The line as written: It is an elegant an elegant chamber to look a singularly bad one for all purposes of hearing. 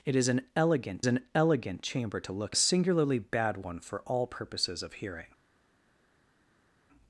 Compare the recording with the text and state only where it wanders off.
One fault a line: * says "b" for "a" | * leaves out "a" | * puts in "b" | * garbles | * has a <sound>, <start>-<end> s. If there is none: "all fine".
all fine